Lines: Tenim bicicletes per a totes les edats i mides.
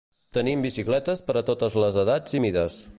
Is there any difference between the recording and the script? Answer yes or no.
no